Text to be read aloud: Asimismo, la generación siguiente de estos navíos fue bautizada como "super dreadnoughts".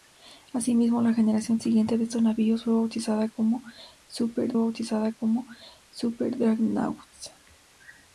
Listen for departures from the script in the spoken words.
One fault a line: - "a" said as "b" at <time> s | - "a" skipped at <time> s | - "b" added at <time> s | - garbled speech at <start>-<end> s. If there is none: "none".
- "bautizada como super" added at 4.6 s